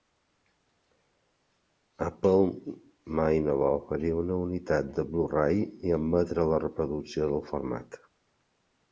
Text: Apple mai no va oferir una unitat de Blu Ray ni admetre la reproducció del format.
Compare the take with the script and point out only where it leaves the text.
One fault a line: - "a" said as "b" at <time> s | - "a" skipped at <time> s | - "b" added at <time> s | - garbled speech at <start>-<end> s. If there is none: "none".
none